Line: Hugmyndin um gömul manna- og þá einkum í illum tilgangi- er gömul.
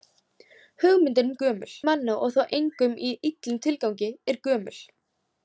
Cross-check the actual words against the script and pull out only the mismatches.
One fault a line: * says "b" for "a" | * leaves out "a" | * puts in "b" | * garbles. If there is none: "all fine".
all fine